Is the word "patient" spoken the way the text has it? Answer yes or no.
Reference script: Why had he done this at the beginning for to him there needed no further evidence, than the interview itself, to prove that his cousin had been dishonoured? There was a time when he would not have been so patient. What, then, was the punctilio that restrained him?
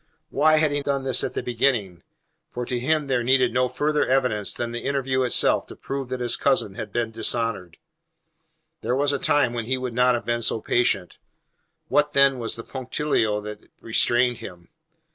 yes